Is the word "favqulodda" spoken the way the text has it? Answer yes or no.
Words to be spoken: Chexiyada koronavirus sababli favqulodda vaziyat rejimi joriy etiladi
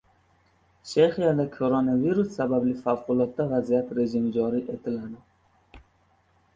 yes